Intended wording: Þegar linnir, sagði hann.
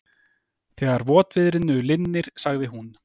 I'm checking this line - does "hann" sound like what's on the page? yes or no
no